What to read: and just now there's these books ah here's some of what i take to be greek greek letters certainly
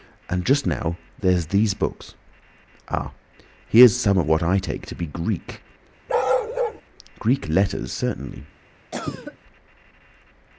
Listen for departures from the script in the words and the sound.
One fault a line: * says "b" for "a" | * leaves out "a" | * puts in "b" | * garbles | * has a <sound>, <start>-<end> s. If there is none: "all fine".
* has a bark, 6.1-6.8 s
* has a cough, 8.9-9.4 s